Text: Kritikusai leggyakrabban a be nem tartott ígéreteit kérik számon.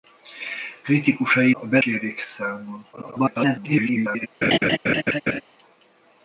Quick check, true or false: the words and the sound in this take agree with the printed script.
false